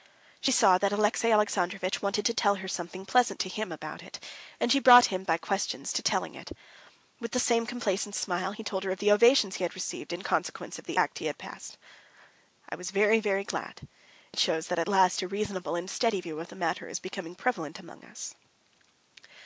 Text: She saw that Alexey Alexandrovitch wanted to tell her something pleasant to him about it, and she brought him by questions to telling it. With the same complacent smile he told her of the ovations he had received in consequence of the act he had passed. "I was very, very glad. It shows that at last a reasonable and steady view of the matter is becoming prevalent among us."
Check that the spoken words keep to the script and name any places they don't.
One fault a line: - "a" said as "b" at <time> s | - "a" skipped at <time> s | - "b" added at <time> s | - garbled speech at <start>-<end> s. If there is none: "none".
none